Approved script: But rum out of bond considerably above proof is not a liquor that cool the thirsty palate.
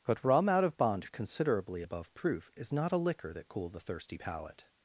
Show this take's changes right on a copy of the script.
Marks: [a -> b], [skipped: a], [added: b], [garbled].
But rum out of bond considerably above proof is not a liquor that cool the thirsty palate.